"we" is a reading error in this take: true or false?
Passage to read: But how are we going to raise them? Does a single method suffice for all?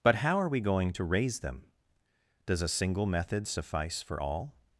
false